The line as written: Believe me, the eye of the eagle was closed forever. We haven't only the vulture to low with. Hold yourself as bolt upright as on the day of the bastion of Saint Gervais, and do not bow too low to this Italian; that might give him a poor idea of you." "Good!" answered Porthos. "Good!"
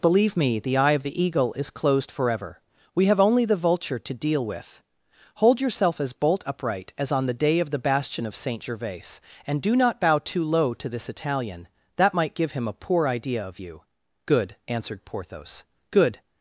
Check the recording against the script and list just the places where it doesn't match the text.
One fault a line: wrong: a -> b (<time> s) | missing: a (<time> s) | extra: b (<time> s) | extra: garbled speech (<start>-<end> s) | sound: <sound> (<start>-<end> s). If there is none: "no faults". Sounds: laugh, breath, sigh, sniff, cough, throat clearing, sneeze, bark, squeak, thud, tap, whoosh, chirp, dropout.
wrong: was -> is (1.5 s)
wrong: haven't -> have (3.0 s)
wrong: low -> deal (4.1 s)